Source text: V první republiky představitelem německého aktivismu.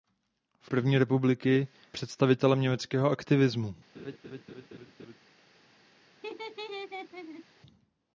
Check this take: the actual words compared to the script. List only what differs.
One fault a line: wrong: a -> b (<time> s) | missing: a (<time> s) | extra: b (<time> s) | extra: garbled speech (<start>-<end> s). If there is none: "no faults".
no faults